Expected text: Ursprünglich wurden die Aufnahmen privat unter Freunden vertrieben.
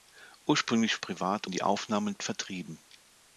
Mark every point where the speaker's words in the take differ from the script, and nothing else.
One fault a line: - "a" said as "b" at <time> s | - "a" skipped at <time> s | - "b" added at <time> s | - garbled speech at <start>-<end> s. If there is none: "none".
- "wurden" said as "privat" at 1.0 s
- "privat unter Freunden" skipped at 2.1 s